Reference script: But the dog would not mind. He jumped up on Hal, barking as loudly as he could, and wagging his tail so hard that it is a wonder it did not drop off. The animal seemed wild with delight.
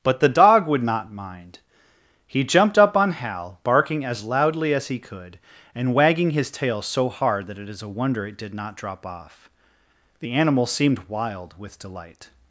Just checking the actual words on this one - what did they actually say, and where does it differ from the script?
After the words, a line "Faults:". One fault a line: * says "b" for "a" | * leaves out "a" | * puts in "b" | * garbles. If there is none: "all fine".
But the dog would not mind. He jumped up on Hal, barking as loudly as he could, and wagging his tail so hard that it is a wonder it did not drop off. The animal seemed wild with delight.
Faults:
all fine